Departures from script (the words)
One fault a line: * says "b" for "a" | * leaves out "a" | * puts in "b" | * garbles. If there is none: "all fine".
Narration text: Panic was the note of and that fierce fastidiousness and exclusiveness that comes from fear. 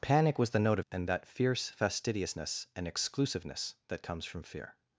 all fine